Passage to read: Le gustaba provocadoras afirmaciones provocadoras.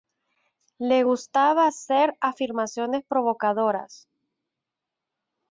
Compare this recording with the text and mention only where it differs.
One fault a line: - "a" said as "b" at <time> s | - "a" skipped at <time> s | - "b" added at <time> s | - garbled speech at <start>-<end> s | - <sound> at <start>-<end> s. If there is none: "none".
- "provocadoras" said as "hacer" at 1.6 s